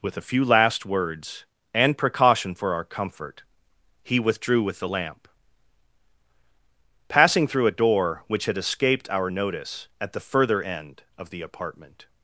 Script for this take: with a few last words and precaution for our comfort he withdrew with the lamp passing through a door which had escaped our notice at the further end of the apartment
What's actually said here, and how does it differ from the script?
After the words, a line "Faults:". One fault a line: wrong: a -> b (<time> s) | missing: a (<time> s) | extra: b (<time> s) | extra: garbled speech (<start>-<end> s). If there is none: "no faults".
with a few last words and precaution for our comfort he withdrew with the lamp passing through a door which had escaped our notice at the further end of the apartment
Faults:
no faults